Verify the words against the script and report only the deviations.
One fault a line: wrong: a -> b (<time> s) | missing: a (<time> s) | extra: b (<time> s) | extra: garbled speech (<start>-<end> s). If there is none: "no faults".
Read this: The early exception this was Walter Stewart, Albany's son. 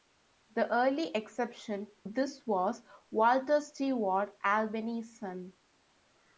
no faults